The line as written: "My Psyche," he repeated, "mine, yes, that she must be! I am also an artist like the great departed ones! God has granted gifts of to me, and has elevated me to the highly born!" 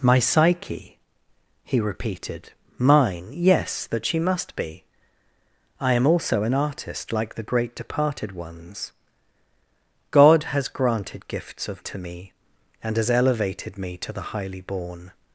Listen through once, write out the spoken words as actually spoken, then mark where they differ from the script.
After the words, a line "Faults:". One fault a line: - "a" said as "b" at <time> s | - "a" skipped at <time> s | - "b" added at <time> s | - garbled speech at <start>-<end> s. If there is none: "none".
"My Psyche," he repeated, "mine, yes, that she must be! I am also an artist like the great departed ones! God has granted gifts of to me, and has elevated me to the highly born!"
Faults:
none